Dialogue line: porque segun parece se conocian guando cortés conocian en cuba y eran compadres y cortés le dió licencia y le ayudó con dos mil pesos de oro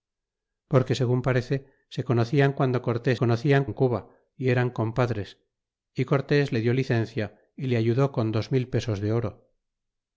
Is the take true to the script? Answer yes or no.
yes